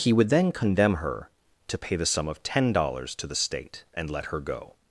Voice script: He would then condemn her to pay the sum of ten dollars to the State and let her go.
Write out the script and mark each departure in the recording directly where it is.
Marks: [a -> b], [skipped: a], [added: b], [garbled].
He would then condemn her to pay the sum of ten dollars to the State and let her go.